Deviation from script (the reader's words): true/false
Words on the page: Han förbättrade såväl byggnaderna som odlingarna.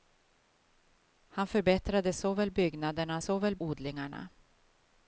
true